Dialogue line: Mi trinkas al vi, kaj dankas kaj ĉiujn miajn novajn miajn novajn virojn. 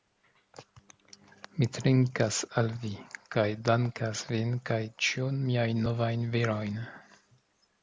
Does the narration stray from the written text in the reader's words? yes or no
yes